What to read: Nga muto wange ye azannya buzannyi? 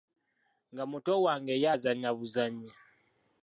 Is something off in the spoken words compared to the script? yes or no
no